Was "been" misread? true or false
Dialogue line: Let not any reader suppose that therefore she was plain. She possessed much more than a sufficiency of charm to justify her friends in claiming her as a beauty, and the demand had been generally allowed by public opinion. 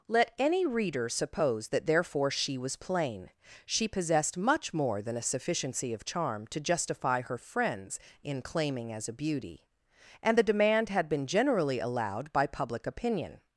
false